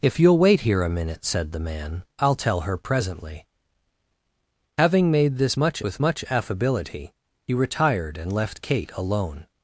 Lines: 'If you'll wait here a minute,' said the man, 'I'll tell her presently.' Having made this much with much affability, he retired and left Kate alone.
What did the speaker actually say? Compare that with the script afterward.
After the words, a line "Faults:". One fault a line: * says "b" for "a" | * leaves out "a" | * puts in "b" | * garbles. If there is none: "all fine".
'If you'll wait here a minute,' said the man, 'I'll tell her presently.' Having made this much with much affability, he retired and left Kate alone.
Faults:
all fine